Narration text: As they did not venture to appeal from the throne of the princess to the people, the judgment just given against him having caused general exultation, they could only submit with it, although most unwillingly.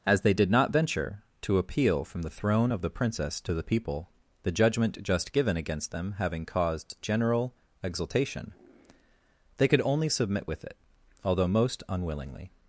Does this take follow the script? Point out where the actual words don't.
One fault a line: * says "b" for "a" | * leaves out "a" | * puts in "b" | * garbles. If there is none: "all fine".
* says "them" for "him"